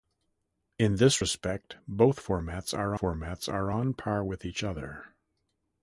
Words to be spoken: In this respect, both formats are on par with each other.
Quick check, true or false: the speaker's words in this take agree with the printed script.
false